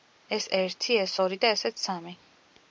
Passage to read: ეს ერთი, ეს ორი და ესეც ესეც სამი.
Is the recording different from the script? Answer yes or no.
yes